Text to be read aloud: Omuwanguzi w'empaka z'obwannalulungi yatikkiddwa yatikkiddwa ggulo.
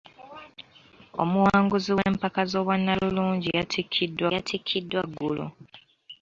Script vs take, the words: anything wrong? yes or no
no